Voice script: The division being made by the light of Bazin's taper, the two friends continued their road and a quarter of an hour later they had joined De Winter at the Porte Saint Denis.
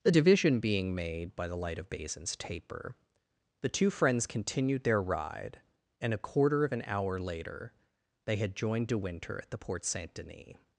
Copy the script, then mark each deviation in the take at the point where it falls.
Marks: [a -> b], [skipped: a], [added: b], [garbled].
The division being made by the light of Bazin's taper, the two friends continued their [road -> ride] and a quarter of an hour later they had joined De Winter at the Porte Saint Denis.